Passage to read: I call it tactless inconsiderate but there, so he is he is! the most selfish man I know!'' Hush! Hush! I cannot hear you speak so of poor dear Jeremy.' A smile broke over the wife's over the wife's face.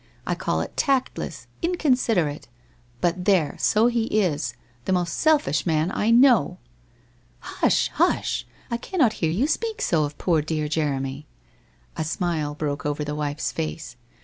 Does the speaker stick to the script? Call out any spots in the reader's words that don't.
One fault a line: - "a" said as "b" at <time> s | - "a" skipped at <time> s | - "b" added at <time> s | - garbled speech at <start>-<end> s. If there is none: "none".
- "he is" skipped at 4.5 s
- "over the wife's" skipped at 13.5 s